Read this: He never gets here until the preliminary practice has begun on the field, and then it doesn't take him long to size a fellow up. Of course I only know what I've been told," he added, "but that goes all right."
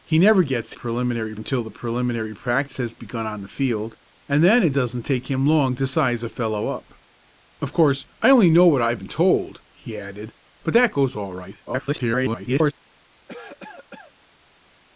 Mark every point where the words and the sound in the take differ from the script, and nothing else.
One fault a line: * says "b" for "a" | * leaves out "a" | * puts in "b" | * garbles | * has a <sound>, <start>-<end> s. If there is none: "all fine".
* says "preliminary" for "here"
* garbles
* has a cough, 13.3-14.1 s